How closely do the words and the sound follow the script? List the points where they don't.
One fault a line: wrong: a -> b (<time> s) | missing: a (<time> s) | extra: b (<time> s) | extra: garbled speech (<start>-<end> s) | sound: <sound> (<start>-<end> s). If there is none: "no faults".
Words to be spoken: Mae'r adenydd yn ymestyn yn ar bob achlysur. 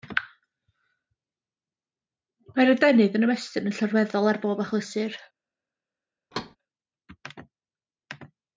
extra: llorweddol (3.8 s)
sound: thud (6.3-6.6 s)